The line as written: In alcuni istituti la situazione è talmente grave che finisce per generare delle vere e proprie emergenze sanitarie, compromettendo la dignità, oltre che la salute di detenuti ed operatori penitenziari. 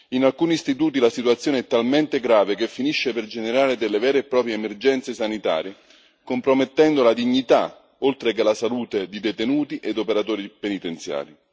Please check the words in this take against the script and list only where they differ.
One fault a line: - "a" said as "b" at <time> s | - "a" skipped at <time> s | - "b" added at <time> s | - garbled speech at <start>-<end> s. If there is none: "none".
none